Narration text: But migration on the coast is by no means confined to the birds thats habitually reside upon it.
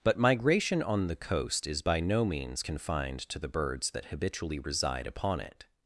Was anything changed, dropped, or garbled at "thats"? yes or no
yes